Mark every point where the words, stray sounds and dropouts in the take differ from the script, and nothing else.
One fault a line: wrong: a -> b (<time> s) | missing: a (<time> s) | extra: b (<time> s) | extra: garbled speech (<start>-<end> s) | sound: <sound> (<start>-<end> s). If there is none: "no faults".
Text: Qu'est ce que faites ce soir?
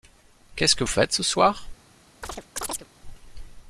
sound: chirp (2.2-2.9 s)